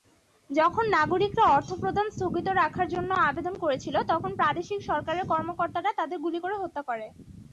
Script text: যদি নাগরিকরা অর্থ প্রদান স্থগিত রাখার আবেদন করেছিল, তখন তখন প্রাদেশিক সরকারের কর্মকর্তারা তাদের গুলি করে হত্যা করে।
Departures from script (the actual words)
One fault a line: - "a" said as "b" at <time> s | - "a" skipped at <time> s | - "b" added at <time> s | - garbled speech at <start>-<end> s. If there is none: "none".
- "যদি" said as "যখন" at 0.5 s
- "জন্য" added at 2.9 s
- "তখন" skipped at 4.3 s